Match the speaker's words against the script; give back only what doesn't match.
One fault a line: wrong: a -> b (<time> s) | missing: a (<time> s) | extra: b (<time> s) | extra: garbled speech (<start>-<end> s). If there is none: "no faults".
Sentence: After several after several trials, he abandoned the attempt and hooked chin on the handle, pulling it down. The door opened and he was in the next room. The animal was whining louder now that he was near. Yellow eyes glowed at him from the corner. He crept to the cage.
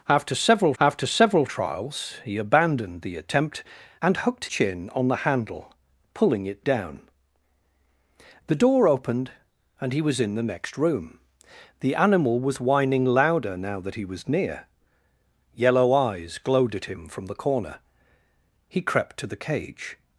no faults